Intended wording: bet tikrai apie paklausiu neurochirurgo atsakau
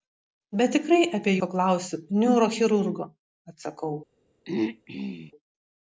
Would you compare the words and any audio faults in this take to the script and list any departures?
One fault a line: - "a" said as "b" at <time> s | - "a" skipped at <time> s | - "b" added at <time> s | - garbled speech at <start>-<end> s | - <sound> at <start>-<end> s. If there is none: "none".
- throat clearing at 4.4-5.3 s